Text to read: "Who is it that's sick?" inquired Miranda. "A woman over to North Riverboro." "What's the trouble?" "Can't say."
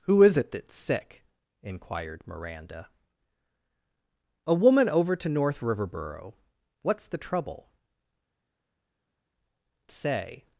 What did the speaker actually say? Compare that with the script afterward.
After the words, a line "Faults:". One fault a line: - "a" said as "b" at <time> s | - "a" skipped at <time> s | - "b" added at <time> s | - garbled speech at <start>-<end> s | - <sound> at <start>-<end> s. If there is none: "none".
"Who is it that's sick?" inquired Miranda. "A woman over to North Riverboro." "What's the trouble?" "Say."
Faults:
- "Can't" skipped at 7.7 s